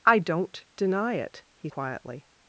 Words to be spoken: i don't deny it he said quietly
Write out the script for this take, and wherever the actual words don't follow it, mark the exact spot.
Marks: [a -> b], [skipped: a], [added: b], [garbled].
i don't deny it he [skipped: said] quietly